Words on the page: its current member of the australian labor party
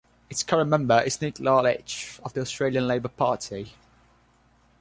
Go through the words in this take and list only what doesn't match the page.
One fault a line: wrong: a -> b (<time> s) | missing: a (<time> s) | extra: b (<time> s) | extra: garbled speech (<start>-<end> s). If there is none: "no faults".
extra: is nick lalich (1.0 s)